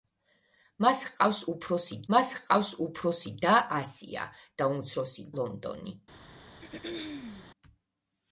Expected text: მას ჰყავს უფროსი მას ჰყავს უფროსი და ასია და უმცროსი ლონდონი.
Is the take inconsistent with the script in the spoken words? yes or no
no